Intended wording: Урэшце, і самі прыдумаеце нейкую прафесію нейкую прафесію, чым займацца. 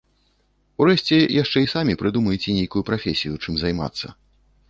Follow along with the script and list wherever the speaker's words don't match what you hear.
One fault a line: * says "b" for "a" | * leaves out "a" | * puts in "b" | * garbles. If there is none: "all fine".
* puts in "яшчэ"
* leaves out "нейкую прафесію"